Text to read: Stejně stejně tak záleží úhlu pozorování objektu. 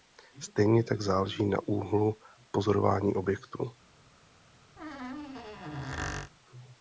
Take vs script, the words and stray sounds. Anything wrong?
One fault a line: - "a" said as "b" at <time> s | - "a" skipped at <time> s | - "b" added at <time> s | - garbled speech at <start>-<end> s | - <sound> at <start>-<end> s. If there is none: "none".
- "stejně" skipped at 0.8 s
- "na" added at 1.4 s
- squeak at 4.8-6.3 s